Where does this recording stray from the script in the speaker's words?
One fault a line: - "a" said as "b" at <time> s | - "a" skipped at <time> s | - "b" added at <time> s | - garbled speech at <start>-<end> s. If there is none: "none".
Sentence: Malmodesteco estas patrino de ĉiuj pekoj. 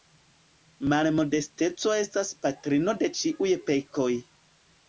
none